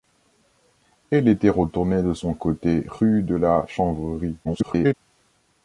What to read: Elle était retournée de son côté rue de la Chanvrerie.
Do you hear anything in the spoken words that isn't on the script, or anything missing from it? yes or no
yes